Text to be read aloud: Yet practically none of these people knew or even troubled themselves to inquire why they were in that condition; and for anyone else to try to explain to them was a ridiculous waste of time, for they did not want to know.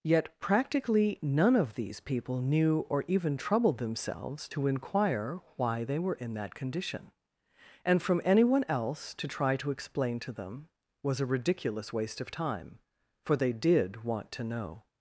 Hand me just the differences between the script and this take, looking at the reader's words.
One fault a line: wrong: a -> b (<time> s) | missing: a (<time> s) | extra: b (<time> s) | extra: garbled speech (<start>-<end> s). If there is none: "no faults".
wrong: for -> from (8.0 s)
missing: not (14.0 s)